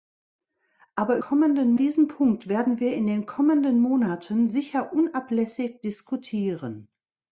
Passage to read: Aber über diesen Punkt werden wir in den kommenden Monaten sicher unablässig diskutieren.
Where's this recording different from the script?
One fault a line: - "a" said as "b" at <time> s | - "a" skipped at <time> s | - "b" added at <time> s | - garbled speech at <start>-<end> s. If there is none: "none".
- "über" said as "kommenden" at 1.2 s